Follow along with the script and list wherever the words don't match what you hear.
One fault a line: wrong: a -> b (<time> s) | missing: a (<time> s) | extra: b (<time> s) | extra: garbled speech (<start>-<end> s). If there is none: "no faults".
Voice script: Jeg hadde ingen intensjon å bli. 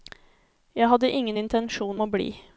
no faults